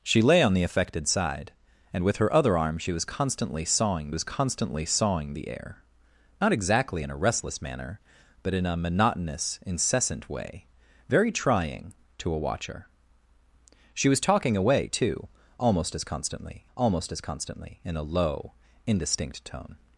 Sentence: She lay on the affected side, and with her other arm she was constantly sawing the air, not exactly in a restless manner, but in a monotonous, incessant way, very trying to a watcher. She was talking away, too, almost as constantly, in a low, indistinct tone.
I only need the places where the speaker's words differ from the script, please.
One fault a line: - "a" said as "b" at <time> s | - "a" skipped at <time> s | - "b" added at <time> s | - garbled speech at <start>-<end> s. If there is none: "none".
- "was constantly sawing" added at 4.1 s
- "almost as constantly" added at 16.7 s